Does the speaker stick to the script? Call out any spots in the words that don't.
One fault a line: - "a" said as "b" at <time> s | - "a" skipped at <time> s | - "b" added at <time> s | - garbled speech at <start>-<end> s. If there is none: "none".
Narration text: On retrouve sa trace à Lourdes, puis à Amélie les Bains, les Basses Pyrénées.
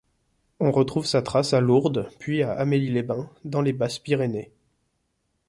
- "dans" added at 3.4 s